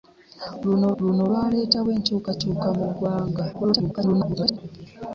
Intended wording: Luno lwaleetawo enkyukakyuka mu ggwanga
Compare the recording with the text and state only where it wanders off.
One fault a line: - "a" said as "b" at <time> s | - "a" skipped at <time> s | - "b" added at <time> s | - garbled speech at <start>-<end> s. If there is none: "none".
- "luno" added at 1.0 s
- garbled speech at 3.5-4.6 s